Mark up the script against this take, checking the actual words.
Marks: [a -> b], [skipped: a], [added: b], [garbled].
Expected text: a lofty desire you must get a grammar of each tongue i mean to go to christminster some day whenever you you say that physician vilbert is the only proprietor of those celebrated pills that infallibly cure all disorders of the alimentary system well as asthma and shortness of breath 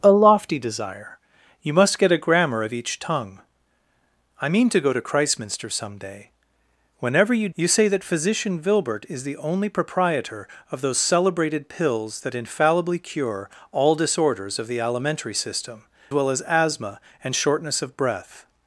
a lofty desire you must get a grammar of each tongue i mean to go to christminster some day whenever you you say that physician vilbert is the only proprietor of those celebrated pills that infallibly cure all disorders of the alimentary system well as asthma and shortness of breath